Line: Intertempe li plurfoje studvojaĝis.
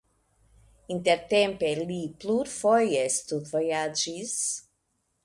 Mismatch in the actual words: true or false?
false